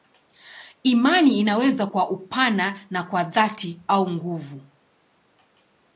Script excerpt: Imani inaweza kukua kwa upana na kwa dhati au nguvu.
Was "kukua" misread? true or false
true